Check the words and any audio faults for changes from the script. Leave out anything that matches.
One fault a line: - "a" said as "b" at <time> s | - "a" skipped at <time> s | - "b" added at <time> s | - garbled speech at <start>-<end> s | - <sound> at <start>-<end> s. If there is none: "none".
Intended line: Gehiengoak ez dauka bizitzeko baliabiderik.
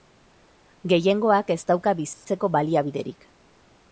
- dropout at 2.1-2.2 s